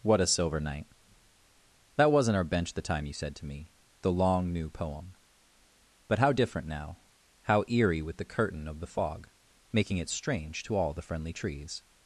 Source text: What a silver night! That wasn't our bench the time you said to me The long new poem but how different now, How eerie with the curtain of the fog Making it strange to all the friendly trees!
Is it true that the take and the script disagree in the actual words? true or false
false